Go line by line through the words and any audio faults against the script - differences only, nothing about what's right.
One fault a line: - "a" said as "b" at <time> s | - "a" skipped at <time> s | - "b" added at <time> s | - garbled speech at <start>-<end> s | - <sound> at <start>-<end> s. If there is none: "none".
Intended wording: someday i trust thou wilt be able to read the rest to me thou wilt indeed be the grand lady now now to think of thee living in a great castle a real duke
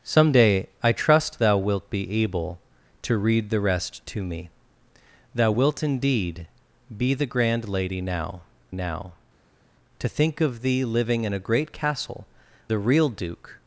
none